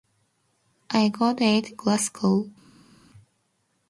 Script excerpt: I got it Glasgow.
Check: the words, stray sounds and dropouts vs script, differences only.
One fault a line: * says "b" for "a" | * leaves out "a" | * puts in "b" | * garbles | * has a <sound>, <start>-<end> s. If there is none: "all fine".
all fine